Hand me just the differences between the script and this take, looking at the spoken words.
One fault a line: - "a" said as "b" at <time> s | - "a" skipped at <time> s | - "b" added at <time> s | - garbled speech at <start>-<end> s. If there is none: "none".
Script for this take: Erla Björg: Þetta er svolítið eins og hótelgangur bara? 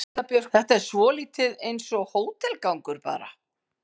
none